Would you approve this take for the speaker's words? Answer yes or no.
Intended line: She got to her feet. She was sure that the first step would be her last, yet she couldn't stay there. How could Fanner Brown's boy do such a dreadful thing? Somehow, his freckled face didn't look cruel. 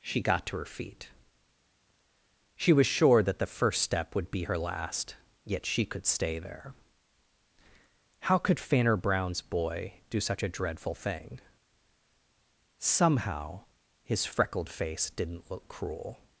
no